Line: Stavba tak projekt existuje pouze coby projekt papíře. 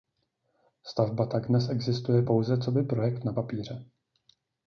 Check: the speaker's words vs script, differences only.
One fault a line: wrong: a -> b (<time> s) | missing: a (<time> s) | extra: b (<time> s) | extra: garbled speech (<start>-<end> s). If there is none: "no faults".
wrong: projekt -> dnes (1.5 s)
extra: na (3.2 s)